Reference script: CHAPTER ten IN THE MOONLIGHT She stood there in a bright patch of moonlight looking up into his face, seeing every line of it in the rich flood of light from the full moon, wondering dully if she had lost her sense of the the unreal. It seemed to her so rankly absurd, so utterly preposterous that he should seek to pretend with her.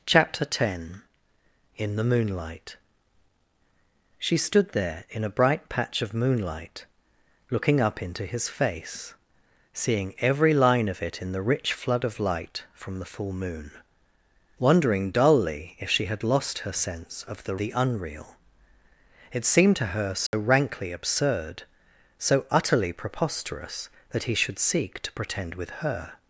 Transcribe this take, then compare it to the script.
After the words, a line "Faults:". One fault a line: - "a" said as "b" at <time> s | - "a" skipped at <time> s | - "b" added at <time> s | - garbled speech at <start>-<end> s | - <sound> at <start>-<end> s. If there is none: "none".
CHAPTER ten IN THE MOONLIGHT She stood there in a bright patch of moonlight looking up into his face, seeing every line of it in the rich flood of light from the full moon, wondering dully if she had lost her sense of the the unreal. It seemed to her so rankly absurd, so utterly preposterous that he should seek to pretend with her.
Faults:
- dropout at 20.3-20.3 s